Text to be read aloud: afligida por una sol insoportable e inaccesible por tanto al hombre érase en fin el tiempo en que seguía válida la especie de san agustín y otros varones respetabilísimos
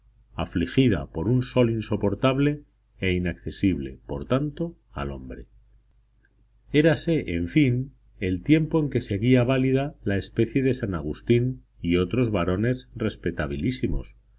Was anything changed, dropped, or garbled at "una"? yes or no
yes